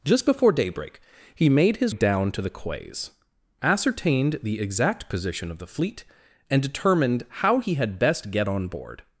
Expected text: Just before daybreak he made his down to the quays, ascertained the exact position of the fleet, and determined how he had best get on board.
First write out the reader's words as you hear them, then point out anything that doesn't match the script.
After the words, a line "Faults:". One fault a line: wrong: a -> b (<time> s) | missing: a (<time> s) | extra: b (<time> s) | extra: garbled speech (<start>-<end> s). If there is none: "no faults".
Just before daybreak he made his down to the quays, ascertained the exact position of the fleet, and determined how he had best get on board.
Faults:
no faults